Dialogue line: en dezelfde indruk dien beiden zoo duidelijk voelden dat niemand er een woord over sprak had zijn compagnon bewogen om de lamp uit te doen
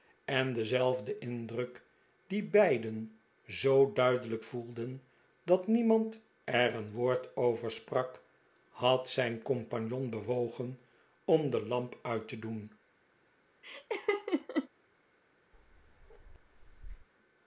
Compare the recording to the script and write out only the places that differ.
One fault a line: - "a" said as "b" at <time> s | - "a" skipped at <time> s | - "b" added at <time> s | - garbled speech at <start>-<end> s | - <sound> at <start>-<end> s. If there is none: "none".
- laugh at 13.6-14.7 s
- bark at 15.5-17.1 s